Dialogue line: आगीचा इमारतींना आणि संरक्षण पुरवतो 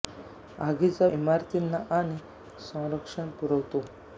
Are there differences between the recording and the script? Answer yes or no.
no